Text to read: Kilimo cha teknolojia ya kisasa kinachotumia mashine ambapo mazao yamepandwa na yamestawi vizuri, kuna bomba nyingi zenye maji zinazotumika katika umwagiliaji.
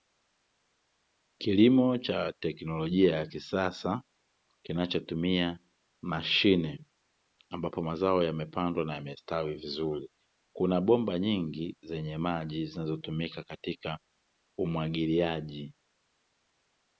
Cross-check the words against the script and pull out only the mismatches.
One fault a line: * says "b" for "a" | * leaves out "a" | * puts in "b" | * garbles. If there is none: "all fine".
all fine